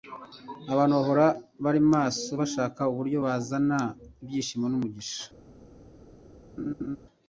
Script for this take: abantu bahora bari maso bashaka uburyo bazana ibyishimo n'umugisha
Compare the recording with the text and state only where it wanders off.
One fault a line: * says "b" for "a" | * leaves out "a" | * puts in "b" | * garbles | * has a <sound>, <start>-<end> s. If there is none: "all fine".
* has a laugh, 6.6-7.0 s